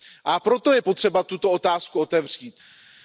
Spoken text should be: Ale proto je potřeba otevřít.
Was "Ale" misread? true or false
true